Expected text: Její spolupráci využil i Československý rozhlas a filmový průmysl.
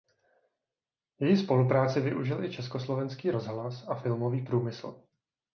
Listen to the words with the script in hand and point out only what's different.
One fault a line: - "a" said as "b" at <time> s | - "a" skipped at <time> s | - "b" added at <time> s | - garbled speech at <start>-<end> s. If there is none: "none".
none